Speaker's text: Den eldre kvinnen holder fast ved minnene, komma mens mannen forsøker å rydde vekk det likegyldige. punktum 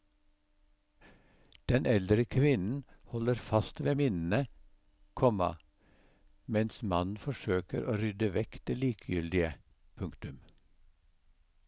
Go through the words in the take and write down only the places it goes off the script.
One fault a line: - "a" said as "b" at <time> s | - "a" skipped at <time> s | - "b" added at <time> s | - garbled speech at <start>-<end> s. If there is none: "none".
none